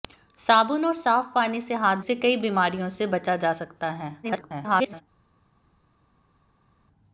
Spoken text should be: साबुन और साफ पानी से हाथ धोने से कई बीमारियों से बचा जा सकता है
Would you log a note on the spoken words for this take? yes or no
yes